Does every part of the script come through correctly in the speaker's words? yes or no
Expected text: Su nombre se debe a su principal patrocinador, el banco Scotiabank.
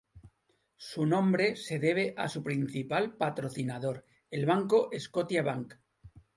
yes